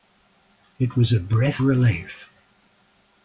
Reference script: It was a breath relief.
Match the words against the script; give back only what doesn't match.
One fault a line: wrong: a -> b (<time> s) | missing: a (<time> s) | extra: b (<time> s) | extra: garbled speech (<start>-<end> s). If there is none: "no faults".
no faults